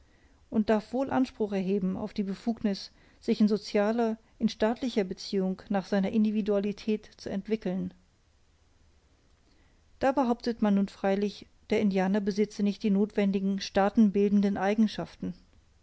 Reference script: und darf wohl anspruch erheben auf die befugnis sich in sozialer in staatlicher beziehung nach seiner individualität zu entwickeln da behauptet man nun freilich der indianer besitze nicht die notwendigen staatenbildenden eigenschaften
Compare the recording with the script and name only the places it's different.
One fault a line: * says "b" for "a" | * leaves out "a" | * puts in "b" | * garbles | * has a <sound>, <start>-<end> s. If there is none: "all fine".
all fine